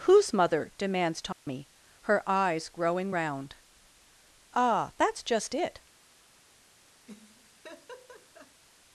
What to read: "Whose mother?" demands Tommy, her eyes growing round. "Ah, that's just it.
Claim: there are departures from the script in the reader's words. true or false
false